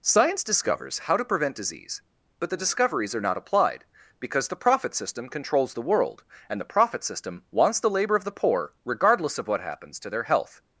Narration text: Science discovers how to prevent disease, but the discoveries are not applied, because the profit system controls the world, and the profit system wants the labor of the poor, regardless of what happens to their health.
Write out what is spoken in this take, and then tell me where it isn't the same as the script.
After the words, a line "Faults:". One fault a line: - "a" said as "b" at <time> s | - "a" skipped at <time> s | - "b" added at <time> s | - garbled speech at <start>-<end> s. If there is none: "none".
Science discovers how to prevent disease, but the discoveries are not applied, because the profit system controls the world, and the profit system wants the labor of the poor, regardless of what happens to their health.
Faults:
none